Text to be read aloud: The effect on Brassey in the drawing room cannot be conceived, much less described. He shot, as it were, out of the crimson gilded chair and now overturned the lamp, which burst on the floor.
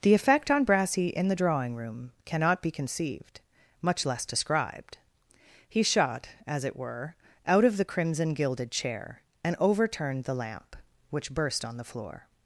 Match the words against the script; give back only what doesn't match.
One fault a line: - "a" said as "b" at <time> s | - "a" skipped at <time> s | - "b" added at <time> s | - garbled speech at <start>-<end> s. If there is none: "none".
- "now" skipped at 9.6 s